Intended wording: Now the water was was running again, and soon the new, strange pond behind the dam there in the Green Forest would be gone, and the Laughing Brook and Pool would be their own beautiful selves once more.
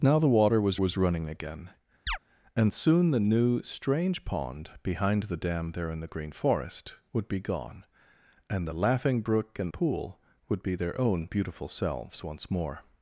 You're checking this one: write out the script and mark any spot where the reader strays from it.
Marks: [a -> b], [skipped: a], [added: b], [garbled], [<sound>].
Now the water was was running again, [chirp] and soon the new, strange pond behind the dam there in the Green Forest would be gone, and the Laughing Brook and Pool would be their own beautiful selves once more.